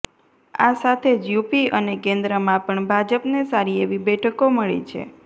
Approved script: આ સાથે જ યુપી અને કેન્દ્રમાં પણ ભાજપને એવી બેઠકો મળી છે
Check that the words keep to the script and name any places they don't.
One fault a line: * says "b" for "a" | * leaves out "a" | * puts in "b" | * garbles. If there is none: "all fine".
* puts in "સારી"